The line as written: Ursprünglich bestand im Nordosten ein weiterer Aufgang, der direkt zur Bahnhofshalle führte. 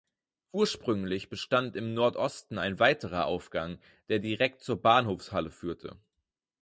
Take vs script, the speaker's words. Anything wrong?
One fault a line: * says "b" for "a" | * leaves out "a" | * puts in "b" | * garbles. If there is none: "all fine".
all fine